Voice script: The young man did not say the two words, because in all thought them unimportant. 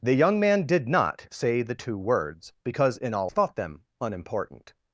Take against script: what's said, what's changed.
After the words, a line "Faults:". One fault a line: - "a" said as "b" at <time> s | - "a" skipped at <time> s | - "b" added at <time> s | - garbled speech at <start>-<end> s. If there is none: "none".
The young man did not say the two words, because in all thought them unimportant.
Faults:
none